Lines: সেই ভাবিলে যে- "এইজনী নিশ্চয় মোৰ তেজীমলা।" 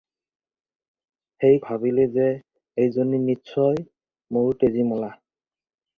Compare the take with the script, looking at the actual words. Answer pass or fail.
pass